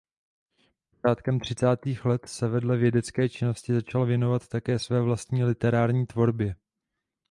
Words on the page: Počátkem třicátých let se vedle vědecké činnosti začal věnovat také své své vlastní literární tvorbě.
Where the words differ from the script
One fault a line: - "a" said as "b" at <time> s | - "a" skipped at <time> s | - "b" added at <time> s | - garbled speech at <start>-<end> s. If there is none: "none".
- "své" skipped at 5.0 s